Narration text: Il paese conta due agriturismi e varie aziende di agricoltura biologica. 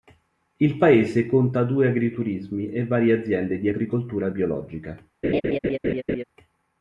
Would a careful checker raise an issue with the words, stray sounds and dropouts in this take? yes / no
yes